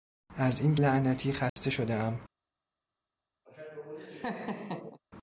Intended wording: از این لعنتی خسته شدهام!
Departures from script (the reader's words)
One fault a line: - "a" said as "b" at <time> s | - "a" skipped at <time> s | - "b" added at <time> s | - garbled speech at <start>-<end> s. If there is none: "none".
none